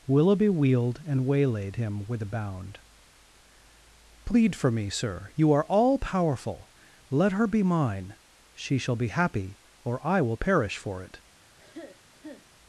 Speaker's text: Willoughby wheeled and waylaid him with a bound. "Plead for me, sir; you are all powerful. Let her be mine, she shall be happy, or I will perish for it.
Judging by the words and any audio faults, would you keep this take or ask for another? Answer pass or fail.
fail